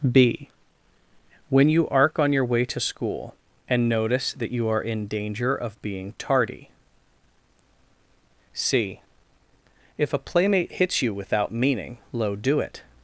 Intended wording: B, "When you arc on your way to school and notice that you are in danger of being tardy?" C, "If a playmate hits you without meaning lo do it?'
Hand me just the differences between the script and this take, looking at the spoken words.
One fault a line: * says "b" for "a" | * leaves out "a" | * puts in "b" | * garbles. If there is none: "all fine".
all fine